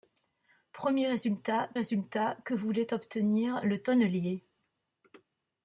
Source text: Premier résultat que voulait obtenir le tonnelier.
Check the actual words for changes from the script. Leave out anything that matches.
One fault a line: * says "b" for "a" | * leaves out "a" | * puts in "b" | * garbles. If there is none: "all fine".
* puts in "résultat"